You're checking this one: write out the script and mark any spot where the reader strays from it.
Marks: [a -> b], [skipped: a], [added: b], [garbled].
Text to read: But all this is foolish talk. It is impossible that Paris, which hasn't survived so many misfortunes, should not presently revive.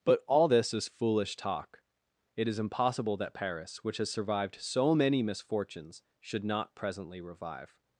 But all this is foolish talk. It is impossible that Paris, which [hasn't -> has] survived so many misfortunes, should not presently revive.